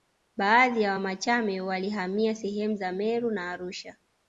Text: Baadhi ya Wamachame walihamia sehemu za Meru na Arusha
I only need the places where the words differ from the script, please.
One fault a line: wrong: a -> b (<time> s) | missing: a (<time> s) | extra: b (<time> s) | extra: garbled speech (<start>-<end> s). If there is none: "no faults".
no faults